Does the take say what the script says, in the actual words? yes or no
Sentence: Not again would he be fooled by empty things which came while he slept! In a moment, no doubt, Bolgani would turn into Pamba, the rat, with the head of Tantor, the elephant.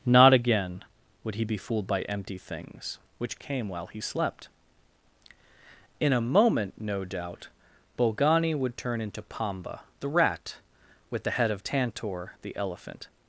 yes